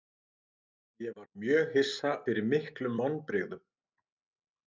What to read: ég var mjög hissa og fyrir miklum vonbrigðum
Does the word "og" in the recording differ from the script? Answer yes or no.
yes